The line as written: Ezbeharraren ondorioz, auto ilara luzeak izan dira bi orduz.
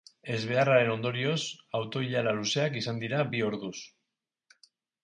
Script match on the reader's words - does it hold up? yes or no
yes